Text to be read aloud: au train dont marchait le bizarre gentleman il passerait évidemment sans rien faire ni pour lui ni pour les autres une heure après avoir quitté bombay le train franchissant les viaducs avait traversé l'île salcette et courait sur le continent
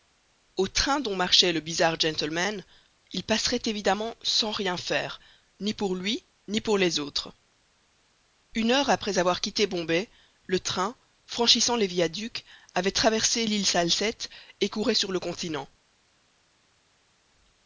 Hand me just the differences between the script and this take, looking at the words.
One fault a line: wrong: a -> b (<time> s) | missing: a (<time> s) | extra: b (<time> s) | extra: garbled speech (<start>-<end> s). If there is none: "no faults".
no faults